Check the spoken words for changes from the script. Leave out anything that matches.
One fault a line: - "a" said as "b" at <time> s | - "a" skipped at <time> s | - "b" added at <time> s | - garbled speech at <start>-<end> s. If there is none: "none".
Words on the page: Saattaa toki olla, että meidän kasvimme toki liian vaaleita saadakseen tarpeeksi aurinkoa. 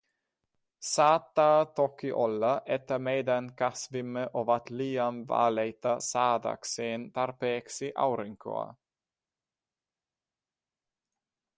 - "toki" said as "ovat" at 4.3 s